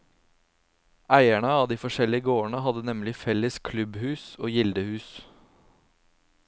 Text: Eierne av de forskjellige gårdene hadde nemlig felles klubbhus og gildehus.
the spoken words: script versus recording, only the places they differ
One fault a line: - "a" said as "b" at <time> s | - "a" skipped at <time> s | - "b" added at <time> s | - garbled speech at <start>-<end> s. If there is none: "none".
none